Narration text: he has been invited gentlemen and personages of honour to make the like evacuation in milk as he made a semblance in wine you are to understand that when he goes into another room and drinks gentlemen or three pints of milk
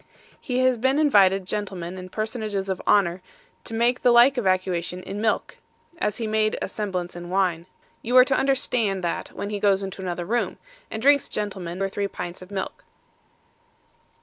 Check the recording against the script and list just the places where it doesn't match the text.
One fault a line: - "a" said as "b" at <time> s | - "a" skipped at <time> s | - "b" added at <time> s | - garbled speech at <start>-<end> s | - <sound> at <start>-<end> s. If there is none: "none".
none